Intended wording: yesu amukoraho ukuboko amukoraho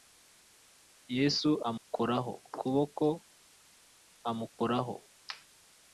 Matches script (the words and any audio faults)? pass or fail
fail